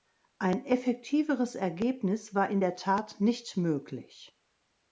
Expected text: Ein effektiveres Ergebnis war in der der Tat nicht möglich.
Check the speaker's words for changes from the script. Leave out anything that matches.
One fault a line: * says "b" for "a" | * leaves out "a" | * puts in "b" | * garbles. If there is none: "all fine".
* leaves out "der"